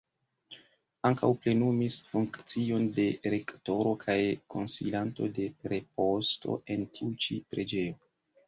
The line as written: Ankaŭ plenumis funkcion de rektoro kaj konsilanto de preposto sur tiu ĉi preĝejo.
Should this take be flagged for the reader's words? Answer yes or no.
yes